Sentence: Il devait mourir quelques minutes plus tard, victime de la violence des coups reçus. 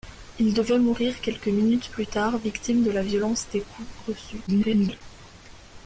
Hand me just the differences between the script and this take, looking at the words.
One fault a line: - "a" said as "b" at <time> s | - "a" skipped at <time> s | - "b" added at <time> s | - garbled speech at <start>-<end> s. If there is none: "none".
- garbled speech at 4.5-5.0 s